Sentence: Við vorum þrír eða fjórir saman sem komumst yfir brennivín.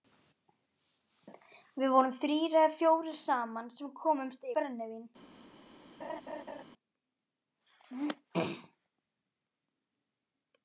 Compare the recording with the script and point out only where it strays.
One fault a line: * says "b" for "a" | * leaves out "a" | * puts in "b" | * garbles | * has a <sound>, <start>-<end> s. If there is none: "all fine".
* leaves out "yfir"
* has a laugh, 6.0-6.6 s